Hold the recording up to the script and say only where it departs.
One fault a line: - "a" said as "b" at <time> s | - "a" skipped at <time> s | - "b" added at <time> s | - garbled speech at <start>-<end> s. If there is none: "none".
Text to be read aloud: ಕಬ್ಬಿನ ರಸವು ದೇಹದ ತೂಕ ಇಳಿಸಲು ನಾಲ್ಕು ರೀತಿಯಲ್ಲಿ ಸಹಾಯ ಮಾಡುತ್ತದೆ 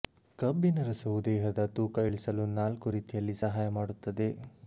none